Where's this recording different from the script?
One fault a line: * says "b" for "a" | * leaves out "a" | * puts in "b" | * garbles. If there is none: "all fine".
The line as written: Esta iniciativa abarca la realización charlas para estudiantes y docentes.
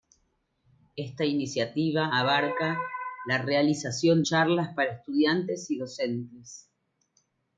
all fine